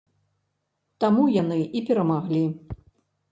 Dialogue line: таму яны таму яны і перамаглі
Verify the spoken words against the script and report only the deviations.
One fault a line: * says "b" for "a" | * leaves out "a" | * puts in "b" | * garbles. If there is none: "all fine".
* leaves out "таму яны"